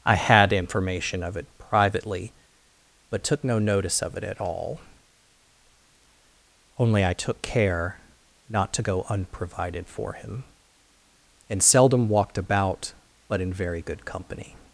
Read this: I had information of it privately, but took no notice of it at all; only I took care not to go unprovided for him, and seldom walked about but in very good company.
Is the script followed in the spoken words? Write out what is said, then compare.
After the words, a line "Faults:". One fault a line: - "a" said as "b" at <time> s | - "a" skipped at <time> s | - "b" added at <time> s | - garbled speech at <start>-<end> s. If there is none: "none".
I had information of it privately, but took no notice of it at all; only I took care not to go unprovided for him, and seldom walked about but in very good company.
Faults:
none